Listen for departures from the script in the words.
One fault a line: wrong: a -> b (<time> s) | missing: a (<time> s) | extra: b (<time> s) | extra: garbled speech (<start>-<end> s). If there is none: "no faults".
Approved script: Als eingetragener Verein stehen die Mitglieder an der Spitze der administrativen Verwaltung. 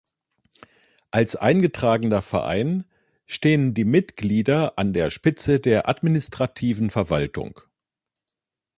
no faults